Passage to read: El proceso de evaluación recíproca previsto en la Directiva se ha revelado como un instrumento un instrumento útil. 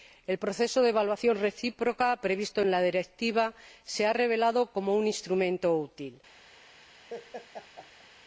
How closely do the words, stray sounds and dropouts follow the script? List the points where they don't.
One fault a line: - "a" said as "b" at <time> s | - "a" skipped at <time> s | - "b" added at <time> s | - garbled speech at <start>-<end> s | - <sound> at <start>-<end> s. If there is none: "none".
- "un instrumento" skipped at 5.8 s
- laugh at 7.1-8.1 s